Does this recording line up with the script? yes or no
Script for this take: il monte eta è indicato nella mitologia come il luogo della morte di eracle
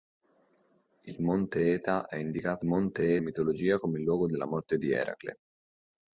no